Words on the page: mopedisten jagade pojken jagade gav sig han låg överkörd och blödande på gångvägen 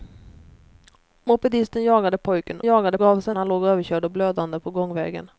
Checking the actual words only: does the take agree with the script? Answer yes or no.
yes